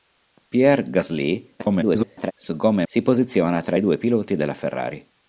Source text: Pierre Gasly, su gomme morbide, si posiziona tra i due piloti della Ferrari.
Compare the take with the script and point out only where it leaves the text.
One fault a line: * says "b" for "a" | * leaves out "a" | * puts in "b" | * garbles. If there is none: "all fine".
* garbles
* leaves out "morbide"